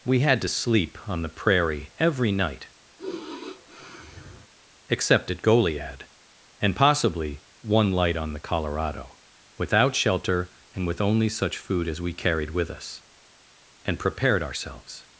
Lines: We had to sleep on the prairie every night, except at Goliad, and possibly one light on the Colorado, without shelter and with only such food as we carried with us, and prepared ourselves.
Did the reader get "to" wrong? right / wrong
right